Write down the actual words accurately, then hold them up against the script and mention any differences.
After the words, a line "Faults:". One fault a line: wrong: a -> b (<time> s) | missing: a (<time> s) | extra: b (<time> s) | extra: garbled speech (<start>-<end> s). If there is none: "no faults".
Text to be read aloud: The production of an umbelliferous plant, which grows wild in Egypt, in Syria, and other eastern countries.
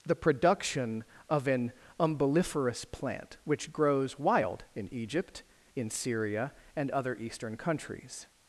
The production of an umbelliferous plant, which grows wild in Egypt, in Syria, and other eastern countries.
Faults:
no faults